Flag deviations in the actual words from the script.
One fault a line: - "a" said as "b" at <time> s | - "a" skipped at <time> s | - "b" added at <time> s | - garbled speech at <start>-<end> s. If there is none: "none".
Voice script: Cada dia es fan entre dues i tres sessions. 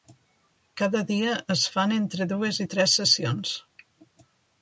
none